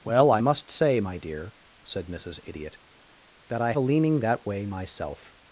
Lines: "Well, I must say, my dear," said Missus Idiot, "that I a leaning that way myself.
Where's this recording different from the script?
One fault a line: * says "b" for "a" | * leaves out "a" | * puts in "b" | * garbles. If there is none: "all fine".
all fine